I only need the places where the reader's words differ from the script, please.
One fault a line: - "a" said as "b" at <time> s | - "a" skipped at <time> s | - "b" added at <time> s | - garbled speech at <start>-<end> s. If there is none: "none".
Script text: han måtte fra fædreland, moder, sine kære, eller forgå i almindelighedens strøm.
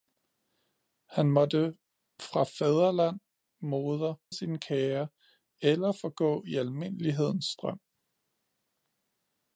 none